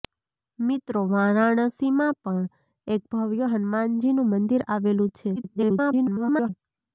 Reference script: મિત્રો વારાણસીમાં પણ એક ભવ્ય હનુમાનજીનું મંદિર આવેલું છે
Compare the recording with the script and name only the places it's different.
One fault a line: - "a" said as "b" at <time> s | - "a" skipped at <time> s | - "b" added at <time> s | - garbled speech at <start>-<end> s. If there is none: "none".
- garbled speech at 5.4-6.5 s